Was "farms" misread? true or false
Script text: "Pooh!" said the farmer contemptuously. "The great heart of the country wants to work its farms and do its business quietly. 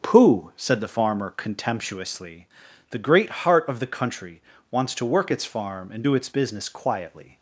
true